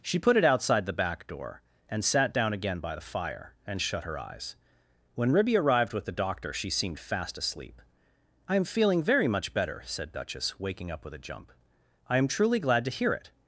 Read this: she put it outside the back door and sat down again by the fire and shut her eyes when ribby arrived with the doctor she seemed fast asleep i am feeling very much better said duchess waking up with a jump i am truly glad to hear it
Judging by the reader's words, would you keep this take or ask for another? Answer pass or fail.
pass